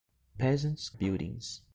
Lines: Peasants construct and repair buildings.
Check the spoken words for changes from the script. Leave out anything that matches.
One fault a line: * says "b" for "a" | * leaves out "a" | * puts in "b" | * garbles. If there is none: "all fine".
* leaves out "construct and repair"